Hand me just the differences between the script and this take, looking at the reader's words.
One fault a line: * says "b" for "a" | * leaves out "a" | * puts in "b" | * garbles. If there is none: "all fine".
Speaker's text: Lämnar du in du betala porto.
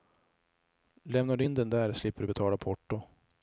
* puts in "den där slipper"